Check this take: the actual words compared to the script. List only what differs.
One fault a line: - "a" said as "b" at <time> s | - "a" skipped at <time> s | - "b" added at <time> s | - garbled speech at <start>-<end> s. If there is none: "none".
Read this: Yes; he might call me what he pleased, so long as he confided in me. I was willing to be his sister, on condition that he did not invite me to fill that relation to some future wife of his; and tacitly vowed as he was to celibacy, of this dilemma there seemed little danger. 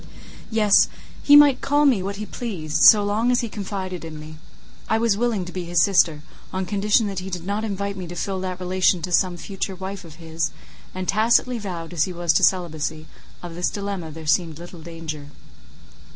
none